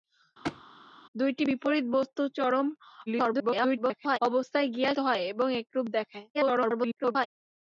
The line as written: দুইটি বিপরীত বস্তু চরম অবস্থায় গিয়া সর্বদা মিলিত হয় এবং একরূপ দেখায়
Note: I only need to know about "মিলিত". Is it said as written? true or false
false